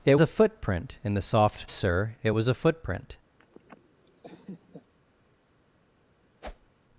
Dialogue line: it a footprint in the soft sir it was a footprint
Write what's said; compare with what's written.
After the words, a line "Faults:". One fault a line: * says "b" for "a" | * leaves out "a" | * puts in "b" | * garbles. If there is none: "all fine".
it a footprint in the soft sir it was a footprint
Faults:
all fine